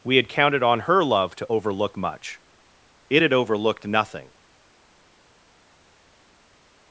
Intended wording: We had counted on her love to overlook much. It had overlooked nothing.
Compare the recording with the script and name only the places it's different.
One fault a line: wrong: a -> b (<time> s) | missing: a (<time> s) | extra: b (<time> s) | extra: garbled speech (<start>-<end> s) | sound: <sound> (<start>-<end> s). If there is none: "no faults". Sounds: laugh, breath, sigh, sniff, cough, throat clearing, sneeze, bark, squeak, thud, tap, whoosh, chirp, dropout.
no faults